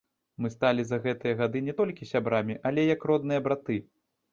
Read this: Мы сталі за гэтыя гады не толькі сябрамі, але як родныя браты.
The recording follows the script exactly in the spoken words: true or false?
true